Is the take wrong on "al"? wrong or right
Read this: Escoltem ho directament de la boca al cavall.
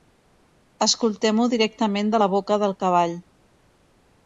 wrong